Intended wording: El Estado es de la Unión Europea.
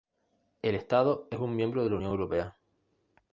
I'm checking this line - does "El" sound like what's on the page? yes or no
yes